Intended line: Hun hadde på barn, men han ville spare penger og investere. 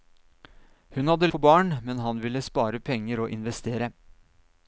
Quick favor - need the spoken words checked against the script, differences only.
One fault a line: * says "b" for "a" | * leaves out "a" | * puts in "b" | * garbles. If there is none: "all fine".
all fine